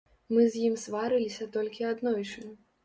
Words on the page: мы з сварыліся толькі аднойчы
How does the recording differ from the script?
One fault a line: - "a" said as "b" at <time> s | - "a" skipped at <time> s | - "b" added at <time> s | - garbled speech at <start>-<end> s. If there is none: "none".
- "ім" added at 0.7 s